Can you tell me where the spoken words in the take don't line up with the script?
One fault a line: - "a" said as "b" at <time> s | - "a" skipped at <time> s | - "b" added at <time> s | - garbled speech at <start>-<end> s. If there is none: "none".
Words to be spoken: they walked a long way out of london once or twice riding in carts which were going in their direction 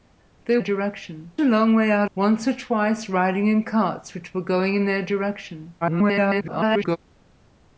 - "walked" said as "direction" at 0.6 s
- "of london" skipped at 2.1 s
- garbled speech at 5.8-7.0 s